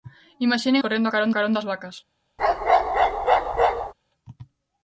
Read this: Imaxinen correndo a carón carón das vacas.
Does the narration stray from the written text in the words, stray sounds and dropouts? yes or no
yes